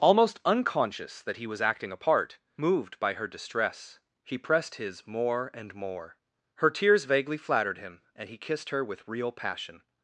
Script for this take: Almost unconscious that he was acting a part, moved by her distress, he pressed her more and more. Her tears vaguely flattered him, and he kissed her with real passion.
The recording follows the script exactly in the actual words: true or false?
false